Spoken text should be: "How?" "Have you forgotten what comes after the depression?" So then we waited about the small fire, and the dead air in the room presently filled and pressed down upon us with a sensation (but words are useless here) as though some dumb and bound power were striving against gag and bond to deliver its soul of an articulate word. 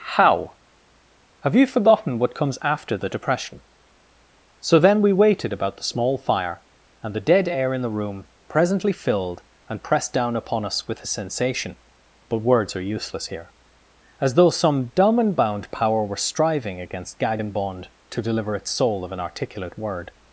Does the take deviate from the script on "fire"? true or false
false